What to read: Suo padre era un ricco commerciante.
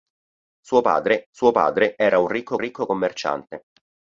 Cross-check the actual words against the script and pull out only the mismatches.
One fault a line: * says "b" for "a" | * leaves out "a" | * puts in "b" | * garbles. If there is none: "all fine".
* puts in "suo padre"
* puts in "ricco"